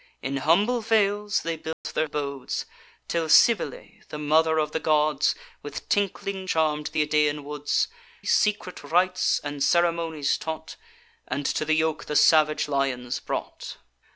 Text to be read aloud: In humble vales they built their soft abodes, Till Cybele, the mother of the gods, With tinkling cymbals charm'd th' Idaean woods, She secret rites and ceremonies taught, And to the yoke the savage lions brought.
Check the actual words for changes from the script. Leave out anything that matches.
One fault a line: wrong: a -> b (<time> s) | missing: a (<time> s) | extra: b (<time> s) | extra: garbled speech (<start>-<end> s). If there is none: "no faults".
missing: soft (2.1 s)
missing: cymbals (6.5 s)
missing: She (7.9 s)